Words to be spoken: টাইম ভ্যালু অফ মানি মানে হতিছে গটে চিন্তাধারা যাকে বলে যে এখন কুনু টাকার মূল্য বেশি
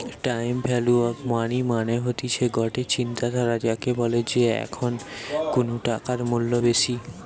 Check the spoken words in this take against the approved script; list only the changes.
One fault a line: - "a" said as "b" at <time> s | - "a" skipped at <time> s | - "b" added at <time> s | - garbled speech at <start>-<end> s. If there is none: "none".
none